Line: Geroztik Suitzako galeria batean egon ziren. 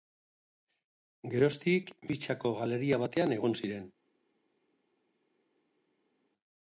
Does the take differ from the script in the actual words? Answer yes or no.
no